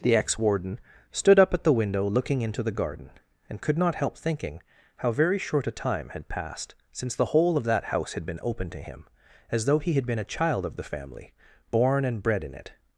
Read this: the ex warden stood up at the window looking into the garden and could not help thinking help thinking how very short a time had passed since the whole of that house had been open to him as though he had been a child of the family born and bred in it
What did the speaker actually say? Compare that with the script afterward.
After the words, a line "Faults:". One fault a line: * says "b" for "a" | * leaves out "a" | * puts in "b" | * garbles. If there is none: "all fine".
the ex warden stood up at the window looking into the garden and could not help thinking how very short a time had passed since the whole of that house had been open to him as though he had been a child of the family born and bred in it
Faults:
* leaves out "help thinking"